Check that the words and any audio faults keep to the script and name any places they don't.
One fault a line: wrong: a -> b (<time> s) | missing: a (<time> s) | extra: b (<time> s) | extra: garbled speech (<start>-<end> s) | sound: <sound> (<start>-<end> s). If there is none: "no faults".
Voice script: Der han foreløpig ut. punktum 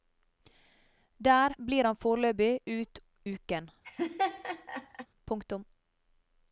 extra: blir (1.7 s)
extra: uken (3.3 s)
sound: laugh (3.8-5.1 s)